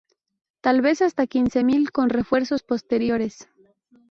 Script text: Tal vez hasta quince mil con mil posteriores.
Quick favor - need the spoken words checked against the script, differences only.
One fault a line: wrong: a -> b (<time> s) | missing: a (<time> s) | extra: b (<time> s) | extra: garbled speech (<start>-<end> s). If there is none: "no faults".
wrong: mil -> refuerzos (2.1 s)